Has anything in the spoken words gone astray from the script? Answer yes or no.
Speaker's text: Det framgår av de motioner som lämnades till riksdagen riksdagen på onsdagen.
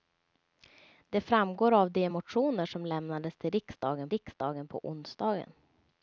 no